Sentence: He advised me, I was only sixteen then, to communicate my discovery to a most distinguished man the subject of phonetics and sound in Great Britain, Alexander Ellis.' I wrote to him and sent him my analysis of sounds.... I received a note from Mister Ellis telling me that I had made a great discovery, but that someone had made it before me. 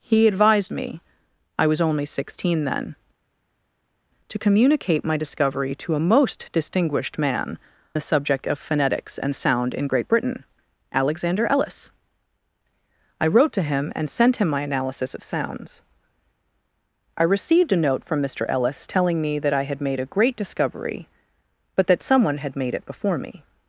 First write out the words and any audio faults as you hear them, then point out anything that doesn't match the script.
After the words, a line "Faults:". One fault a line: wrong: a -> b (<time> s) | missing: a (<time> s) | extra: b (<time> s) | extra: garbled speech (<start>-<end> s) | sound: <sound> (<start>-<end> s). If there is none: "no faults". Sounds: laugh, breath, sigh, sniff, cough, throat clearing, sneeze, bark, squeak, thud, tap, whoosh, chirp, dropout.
He advised me, I was only sixteen then, to communicate my discovery to a most distinguished man the subject of phonetics and sound in Great Britain, Alexander Ellis.' I wrote to him and sent him my analysis of sounds.... I received a note from Mister Ellis telling me that I had made a great discovery, but that someone had made it before me.
Faults:
no faults